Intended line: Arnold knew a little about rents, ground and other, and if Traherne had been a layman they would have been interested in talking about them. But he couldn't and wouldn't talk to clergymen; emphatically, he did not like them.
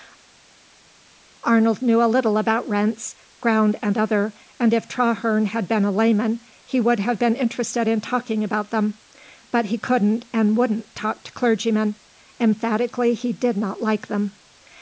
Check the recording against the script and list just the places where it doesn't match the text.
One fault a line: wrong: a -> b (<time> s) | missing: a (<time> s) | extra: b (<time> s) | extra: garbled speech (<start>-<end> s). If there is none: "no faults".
wrong: they -> he (6.7 s)